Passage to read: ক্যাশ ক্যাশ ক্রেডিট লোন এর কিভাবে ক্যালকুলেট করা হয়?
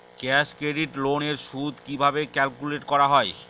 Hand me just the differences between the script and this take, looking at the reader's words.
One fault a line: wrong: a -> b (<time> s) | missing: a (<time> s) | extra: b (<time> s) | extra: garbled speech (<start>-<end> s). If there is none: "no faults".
missing: ক্যাশ (0.5 s)
extra: সুদ (1.5 s)